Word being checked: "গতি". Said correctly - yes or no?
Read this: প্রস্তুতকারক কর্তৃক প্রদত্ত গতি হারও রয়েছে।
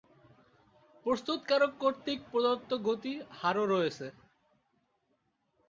yes